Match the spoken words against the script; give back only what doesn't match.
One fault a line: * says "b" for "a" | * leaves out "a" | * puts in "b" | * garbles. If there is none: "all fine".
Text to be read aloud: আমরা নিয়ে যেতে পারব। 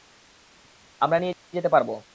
all fine